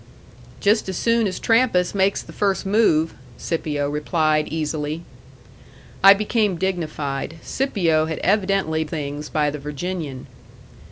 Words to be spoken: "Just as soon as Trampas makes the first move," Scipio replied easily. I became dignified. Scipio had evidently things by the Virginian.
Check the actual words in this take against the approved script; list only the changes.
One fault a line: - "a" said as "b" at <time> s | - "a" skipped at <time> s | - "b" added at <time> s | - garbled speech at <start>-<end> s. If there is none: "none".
none